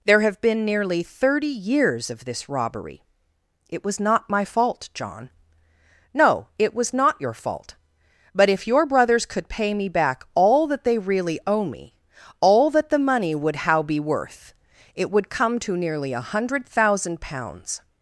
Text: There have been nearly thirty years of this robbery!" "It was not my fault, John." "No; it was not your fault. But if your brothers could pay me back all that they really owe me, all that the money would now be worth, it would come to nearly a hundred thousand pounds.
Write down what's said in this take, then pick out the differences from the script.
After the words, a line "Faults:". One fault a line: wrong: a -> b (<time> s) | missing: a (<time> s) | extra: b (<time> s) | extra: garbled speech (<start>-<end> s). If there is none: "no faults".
There have been nearly thirty years of this robbery!" "It was not my fault, John." "No; it was not your fault. But if your brothers could pay me back all that they really owe me, all that the money would how be worth, it would come to nearly a hundred thousand pounds.
Faults:
wrong: now -> how (13.7 s)